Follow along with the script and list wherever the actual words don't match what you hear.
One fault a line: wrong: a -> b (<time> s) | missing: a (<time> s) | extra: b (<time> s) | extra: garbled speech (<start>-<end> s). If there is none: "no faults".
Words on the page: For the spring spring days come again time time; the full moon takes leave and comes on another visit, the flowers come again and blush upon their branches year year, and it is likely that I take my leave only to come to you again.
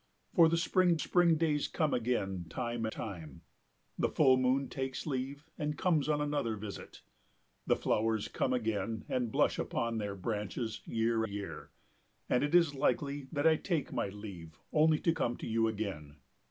no faults